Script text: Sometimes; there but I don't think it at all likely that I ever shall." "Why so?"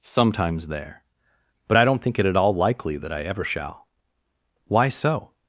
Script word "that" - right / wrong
right